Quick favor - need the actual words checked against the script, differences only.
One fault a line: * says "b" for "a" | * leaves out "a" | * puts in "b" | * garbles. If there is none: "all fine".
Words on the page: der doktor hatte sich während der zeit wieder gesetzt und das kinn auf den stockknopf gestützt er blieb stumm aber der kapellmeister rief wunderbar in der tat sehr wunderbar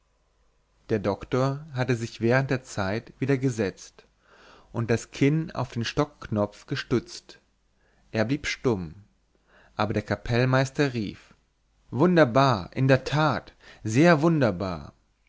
all fine